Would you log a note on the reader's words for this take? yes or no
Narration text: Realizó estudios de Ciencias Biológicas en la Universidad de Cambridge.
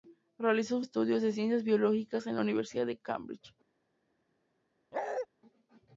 no